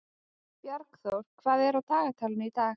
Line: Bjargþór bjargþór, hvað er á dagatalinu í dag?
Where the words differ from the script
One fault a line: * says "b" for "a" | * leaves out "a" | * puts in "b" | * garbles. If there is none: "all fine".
* leaves out "bjargþór"